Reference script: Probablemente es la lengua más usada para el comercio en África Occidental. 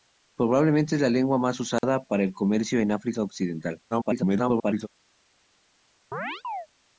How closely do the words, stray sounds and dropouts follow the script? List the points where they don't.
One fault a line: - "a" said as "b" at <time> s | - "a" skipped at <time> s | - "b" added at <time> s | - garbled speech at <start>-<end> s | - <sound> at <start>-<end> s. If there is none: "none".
- dropout at 1.8-1.8 s
- garbled speech at 3.9-4.9 s
- chirp at 6.1-6.7 s